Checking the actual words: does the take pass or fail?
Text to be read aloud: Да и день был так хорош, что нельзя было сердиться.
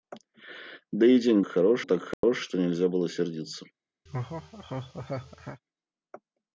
fail